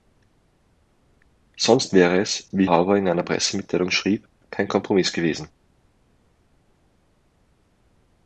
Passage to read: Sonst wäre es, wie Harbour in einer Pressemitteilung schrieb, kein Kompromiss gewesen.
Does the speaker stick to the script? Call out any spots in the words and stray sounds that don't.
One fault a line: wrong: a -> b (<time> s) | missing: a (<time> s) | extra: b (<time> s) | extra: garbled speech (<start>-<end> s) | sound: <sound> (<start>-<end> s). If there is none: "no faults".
no faults